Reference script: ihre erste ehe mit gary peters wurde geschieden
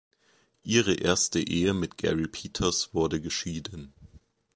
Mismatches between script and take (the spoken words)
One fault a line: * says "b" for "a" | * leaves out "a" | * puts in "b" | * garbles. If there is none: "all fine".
all fine